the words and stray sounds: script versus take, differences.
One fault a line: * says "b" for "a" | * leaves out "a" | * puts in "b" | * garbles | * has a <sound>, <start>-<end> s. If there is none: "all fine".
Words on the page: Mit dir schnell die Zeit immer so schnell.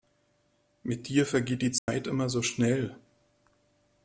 * says "vergeht" for "schnell"
* has a dropout, 1.8-1.9 s